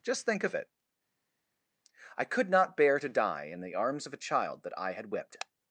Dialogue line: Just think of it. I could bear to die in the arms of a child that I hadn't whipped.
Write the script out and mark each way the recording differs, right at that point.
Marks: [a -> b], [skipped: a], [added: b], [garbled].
Just think of it. I could [added: not] bear to die in the arms of a child that I [hadn't -> had] whipped.